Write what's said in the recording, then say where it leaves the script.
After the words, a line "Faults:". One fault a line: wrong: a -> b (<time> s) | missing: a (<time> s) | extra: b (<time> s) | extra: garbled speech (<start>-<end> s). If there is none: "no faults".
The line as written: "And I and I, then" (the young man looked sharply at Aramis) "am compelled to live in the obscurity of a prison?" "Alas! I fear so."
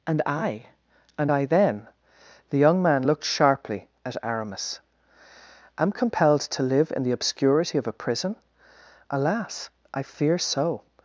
"And I and I, then" (the young man looked sharply at Aramis) "am compelled to live in the obscurity of a prison?" "Alas! I fear so."
Faults:
no faults